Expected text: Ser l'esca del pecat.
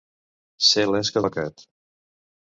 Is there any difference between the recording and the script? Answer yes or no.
yes